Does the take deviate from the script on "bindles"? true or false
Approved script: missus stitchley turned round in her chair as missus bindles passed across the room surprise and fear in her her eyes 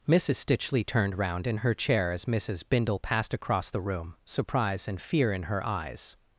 true